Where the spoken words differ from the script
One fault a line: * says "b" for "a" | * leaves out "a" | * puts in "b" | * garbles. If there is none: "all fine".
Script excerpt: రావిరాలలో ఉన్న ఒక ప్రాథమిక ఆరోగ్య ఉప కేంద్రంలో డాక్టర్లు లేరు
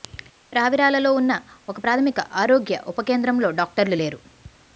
all fine